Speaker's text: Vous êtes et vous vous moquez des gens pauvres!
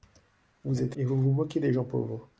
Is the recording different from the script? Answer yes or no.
no